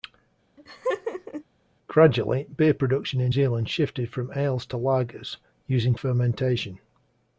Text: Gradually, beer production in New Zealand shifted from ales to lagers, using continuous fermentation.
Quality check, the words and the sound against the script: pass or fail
fail